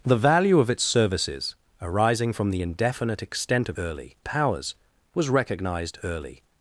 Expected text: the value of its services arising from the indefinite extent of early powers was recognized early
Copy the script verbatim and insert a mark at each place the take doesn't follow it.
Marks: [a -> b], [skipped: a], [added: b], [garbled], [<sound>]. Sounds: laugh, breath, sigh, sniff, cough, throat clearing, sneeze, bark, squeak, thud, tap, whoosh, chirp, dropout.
the value of its services arising from the indefinite extent of early powers was recognized early